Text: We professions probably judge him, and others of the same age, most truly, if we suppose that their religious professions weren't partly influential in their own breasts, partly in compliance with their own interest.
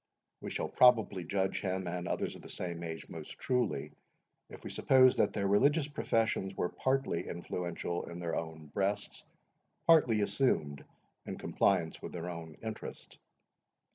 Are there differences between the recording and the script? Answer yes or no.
yes